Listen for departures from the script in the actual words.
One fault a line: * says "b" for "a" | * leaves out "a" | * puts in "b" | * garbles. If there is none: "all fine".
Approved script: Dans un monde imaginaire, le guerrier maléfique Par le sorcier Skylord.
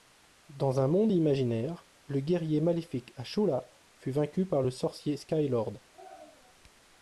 * puts in "Ashura fut vaincu"